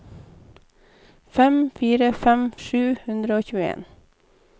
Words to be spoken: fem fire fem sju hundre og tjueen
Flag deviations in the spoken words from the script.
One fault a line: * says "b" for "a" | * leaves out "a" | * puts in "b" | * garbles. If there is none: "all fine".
all fine